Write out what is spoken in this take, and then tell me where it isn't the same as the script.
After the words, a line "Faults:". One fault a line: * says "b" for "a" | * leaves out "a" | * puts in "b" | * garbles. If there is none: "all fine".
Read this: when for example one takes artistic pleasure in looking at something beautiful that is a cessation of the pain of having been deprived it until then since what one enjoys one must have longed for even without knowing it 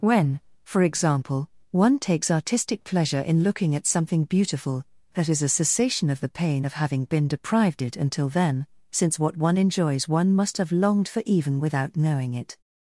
when for example one takes artistic pleasure in looking at something beautiful that is a cessation of the pain of having been deprived it until then since what one enjoys one must have longed for even without knowing it
Faults:
all fine